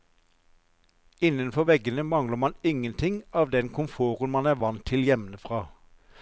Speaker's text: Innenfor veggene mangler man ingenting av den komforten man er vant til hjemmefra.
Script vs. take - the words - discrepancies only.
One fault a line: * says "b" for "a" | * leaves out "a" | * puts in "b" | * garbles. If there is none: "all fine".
all fine